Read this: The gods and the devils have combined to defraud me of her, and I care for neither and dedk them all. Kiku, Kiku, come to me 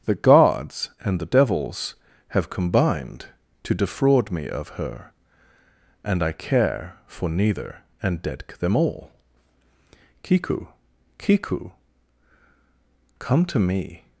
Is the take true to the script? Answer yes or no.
yes